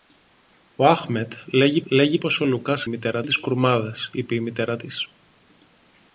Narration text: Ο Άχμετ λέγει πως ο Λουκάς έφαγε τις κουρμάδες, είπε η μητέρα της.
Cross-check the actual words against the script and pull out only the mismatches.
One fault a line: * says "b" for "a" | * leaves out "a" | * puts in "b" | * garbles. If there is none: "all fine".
* puts in "λέγει"
* says "μητέρα" for "έφαγε"